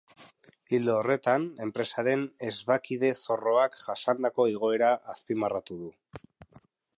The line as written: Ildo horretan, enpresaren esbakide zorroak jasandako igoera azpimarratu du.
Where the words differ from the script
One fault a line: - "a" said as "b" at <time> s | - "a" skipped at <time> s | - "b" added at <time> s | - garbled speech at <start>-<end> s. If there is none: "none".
none